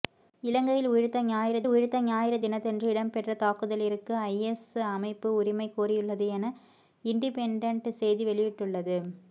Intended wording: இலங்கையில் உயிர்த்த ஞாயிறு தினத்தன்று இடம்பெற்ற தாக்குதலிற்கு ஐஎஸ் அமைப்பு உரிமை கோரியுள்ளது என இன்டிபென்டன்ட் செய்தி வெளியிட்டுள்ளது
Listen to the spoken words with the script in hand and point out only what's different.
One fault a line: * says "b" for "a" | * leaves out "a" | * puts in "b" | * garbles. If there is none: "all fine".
* puts in "உயிர்த்த ஞாயிறு"